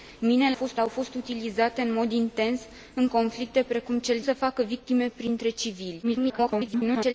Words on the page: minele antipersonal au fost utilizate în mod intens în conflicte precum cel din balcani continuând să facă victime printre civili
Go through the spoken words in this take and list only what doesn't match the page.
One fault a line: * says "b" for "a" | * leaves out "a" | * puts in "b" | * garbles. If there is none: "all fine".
* says "fost" for "antipersonal"
* leaves out "din balcani continuând"
* garbles